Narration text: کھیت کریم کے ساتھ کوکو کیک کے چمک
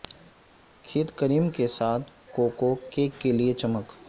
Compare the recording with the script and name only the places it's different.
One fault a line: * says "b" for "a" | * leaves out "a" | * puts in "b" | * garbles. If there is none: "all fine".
* puts in "لئے"